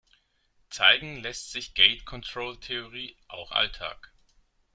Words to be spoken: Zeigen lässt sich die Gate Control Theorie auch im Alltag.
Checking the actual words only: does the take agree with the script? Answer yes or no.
no